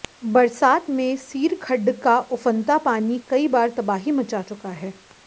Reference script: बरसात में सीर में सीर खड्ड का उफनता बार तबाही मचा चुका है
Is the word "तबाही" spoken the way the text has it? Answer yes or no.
yes